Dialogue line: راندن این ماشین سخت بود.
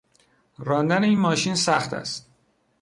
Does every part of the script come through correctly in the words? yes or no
no